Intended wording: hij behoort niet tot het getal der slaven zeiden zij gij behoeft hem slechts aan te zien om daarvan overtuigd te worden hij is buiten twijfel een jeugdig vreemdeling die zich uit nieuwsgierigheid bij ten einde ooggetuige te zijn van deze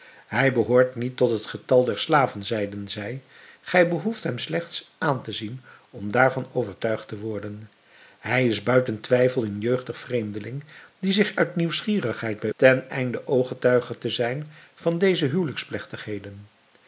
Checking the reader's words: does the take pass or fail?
pass